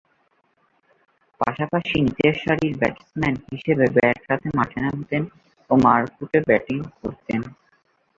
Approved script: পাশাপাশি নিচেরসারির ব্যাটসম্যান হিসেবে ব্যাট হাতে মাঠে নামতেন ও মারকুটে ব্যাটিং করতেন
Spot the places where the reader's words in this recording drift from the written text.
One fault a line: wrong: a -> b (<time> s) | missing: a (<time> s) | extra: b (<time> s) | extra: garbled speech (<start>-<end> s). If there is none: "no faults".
no faults